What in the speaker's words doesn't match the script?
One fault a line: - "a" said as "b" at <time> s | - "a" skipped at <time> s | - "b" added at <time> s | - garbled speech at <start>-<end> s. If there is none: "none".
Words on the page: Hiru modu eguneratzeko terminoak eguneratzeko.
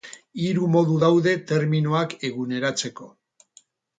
- "eguneratzeko" said as "daude" at 1.0 s